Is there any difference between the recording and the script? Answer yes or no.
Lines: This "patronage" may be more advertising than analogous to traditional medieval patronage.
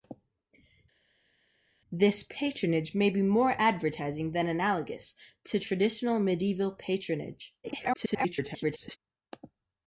yes